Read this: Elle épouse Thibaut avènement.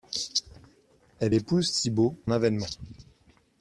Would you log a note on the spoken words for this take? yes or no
no